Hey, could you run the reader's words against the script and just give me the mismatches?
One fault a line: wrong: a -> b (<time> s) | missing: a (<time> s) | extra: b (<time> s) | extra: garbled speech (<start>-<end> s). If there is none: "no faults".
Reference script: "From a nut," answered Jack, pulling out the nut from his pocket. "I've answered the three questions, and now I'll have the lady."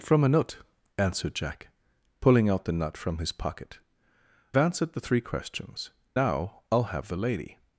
missing: I've (3.8 s)
missing: and (5.9 s)